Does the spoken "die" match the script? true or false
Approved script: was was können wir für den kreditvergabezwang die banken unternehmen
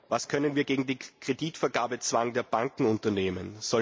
false